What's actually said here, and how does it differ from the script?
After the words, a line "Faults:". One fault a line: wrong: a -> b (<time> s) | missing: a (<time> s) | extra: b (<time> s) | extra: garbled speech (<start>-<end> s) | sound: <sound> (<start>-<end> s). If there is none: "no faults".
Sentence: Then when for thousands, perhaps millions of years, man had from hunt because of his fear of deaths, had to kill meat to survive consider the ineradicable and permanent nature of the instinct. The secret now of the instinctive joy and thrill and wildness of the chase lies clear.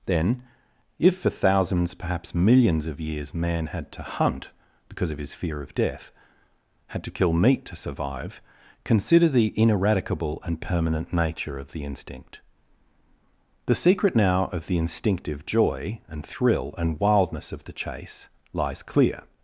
Then if for thousands, perhaps millions of years, man had to hunt because of his fear of death, had to kill meat to survive consider the ineradicable and permanent nature of the instinct. The secret now of the instinctive joy and thrill and wildness of the chase lies clear.
Faults:
wrong: when -> if (1.0 s)
wrong: from -> to (3.9 s)
wrong: deaths -> death (5.7 s)